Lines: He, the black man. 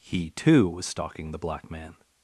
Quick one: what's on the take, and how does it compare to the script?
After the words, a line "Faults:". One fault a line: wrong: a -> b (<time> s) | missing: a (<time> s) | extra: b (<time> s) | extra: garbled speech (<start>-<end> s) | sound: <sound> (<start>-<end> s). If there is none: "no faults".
He, too, was stalking the black man.
Faults:
extra: too was stalking (0.3 s)